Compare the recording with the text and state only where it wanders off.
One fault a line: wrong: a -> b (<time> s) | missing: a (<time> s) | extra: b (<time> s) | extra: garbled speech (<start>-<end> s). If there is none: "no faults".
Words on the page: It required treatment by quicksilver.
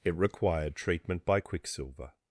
no faults